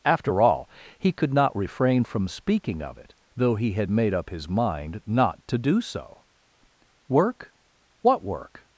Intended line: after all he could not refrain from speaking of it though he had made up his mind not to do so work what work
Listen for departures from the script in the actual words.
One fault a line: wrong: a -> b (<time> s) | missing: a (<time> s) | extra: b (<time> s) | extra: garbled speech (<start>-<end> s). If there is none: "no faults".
no faults